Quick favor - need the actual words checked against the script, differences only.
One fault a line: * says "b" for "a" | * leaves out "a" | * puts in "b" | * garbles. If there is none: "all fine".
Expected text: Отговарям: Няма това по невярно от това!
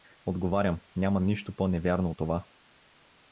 * says "нищо" for "това"